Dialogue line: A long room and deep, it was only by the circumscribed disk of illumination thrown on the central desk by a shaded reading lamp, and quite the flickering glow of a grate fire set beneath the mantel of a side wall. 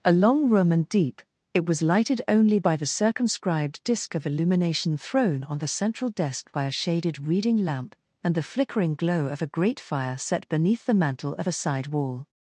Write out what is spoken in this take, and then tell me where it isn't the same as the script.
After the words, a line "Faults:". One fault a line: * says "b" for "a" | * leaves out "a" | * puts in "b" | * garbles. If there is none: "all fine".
A long room and deep, it was lighted only by the circumscribed disk of illumination thrown on the central desk by a shaded reading lamp, and the flickering glow of a grate fire set beneath the mantel of a side wall.
Faults:
* puts in "lighted"
* leaves out "quite"